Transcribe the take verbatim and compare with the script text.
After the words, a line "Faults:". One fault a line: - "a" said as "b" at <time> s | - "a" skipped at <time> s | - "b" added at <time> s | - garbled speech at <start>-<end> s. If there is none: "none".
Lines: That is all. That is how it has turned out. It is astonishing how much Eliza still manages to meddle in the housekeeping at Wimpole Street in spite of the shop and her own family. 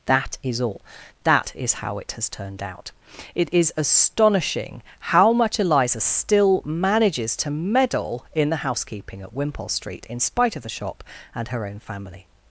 That is all. That is how it has turned out. It is astonishing how much Eliza still manages to meddle in the housekeeping at Wimpole Street in spite of the shop and her own family.
Faults:
none